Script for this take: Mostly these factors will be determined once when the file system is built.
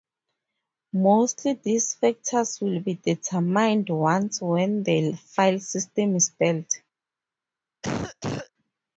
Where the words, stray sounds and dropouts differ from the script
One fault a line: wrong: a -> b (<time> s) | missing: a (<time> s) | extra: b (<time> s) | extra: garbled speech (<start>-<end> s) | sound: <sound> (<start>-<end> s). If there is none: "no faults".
sound: cough (7.8-8.5 s)